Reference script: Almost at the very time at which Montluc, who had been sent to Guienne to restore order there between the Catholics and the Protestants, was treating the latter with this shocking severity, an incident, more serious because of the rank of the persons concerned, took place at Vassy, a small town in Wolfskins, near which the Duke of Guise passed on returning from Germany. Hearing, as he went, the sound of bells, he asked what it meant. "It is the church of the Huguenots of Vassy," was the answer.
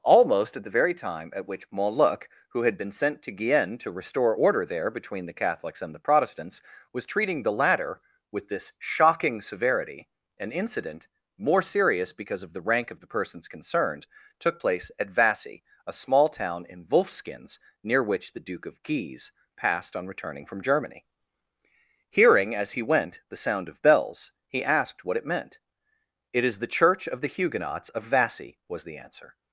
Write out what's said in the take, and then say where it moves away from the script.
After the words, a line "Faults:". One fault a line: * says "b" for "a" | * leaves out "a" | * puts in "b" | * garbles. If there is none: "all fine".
Almost at the very time at which Montluc, who had been sent to Guienne to restore order there between the Catholics and the Protestants, was treating the latter with this shocking severity, an incident, more serious because of the rank of the persons concerned, took place at Vassy, a small town in Wolfskins, near which the Duke of Guise passed on returning from Germany. Hearing, as he went, the sound of bells, he asked what it meant. "It is the church of the Huguenots of Vassy," was the answer.
Faults:
all fine